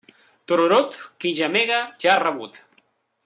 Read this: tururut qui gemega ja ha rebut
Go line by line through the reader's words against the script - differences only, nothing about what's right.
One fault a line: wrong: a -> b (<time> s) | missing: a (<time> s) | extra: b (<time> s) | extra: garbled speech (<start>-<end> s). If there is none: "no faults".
no faults